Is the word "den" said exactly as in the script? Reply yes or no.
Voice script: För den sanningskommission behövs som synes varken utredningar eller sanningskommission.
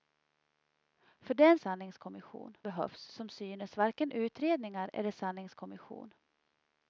yes